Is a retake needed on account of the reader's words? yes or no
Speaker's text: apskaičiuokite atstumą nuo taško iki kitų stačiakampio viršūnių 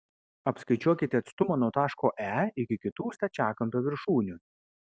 yes